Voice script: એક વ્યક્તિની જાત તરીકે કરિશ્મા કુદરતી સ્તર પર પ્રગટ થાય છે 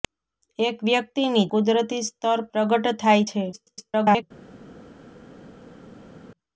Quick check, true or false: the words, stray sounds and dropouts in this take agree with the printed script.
false